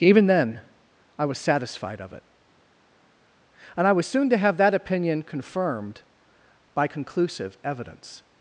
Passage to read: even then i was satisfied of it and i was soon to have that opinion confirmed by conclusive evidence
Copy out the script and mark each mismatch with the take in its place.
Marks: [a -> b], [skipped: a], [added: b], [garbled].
even then i was satisfied of it and i was soon to have that opinion confirmed by conclusive evidence